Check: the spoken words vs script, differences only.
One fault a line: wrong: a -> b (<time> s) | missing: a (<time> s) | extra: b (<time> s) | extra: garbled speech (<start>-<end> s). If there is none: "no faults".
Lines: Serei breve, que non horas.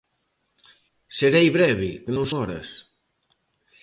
no faults